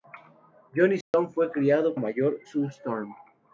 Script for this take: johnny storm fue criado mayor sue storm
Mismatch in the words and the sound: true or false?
true